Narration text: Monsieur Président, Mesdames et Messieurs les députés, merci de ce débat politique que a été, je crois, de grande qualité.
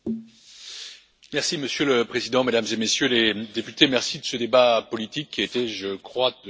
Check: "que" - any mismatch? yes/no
yes